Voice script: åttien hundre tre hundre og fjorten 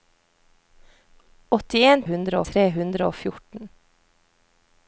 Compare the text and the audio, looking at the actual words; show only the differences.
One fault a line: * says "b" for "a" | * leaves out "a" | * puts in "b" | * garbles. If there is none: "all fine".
all fine